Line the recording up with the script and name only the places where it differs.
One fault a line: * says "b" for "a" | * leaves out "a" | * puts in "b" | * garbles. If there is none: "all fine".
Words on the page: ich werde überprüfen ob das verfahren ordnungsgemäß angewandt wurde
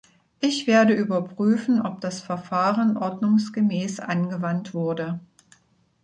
all fine